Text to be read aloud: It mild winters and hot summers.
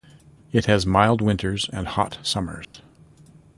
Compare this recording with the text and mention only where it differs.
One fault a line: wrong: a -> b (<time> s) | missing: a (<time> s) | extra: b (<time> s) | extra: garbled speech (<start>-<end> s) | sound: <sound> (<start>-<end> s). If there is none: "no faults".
extra: has (0.7 s)
sound: dropout (2.6-2.7 s)